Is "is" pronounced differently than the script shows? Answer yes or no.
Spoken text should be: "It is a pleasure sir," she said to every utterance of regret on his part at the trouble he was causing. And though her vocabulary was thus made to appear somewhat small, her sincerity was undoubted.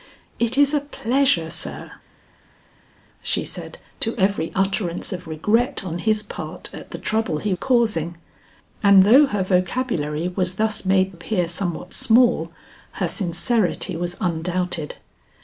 no